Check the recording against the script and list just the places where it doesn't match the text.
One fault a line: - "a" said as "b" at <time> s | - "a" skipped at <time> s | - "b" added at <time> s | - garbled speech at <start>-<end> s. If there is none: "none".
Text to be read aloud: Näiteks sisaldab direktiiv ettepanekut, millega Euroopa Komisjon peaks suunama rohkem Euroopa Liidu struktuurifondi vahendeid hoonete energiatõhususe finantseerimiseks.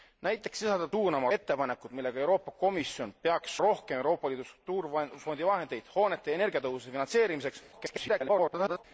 - "direktiiv" said as "suunama" at 0.9 s
- "suunama" skipped at 3.6 s
- garbled speech at 7.7-8.8 s